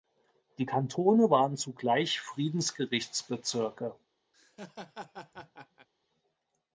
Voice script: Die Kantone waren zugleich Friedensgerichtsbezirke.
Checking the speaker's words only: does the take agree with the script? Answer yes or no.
yes